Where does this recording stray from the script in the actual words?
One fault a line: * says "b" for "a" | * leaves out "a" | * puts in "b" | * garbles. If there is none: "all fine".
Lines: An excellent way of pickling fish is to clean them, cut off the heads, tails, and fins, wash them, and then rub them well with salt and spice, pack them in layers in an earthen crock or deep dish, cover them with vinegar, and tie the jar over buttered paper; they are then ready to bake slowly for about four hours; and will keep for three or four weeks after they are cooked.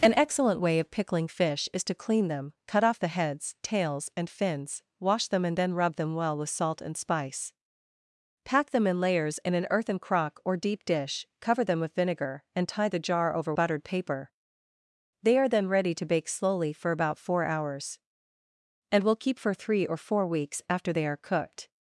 all fine